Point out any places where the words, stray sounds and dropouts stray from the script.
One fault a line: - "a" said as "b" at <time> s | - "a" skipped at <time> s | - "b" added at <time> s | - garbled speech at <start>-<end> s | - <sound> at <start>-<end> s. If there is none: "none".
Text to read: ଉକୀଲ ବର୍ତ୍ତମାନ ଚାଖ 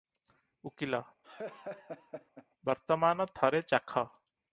- laugh at 1.2-2.5 s
- "ଥରେ" added at 3.3 s